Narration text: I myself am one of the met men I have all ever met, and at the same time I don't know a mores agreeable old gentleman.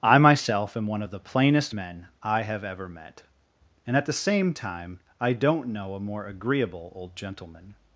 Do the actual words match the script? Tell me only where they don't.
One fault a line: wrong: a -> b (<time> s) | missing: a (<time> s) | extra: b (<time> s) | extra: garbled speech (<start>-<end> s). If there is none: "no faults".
wrong: met -> plainest (1.2 s)
missing: all (2.6 s)
wrong: mores -> more (6.0 s)